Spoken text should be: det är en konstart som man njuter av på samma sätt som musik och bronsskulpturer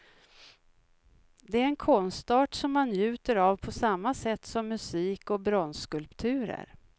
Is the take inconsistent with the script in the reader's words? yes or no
no